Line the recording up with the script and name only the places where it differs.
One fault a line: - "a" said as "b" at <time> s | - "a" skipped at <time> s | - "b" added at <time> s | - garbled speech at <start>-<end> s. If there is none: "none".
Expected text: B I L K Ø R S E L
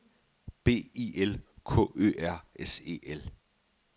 none